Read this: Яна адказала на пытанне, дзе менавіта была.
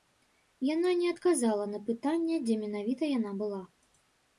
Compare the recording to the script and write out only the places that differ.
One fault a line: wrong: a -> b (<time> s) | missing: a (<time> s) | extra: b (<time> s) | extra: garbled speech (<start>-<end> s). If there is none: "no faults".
extra: не (1.0 s)
extra: яна (3.2 s)